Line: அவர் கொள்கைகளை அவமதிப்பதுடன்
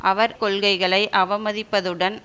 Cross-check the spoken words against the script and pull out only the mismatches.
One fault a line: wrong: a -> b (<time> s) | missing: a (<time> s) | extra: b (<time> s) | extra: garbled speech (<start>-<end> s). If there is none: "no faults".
no faults